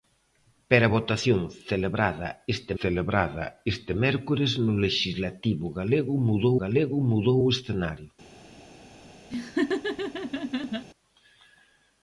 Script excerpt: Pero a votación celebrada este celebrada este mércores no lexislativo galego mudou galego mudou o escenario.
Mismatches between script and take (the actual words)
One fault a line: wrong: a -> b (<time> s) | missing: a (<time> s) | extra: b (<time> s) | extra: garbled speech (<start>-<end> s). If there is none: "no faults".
no faults